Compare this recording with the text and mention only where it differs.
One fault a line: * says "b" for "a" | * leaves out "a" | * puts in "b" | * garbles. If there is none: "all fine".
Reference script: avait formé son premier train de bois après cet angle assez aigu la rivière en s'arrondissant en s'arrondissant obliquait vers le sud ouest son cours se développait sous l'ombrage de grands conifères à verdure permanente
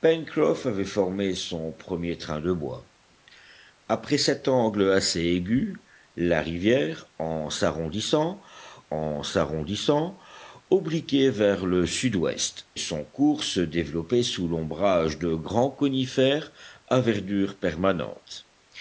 all fine